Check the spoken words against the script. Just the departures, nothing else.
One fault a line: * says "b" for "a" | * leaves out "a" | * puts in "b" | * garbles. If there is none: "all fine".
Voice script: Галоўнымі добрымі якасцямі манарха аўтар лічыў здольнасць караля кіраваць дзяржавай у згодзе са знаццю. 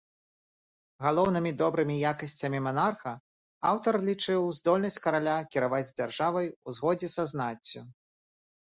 all fine